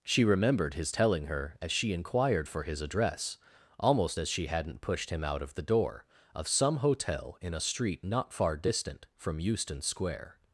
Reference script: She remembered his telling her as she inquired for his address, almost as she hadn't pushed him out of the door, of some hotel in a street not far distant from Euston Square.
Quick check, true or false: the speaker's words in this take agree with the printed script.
true